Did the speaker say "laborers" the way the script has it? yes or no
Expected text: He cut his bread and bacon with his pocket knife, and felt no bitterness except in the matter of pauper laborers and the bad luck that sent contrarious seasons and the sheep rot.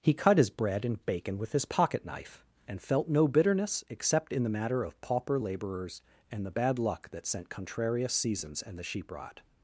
yes